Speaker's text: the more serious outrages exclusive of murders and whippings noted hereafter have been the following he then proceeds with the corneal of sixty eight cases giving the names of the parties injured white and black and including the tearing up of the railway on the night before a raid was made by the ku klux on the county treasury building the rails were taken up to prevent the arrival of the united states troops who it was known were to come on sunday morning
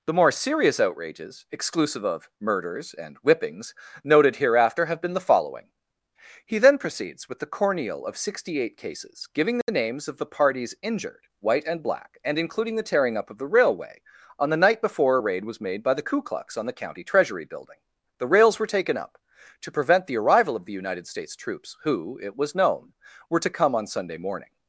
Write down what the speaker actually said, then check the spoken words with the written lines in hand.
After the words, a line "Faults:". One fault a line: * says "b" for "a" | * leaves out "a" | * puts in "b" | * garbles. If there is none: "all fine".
the more serious outrages exclusive of murders and whippings noted hereafter have been the following he then proceeds with the corneal of sixty eight cases giving the names of the parties injured white and black and including the tearing up of the railway on the night before a raid was made by the ku klux on the county treasury building the rails were taken up to prevent the arrival of the united states troops who it was known were to come on sunday morning
Faults:
all fine